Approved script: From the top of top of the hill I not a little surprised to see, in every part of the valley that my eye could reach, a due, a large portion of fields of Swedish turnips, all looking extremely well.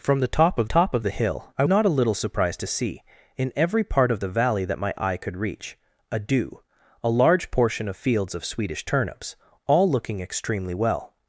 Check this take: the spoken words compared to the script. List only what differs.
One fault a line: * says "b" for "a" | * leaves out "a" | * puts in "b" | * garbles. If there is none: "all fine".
all fine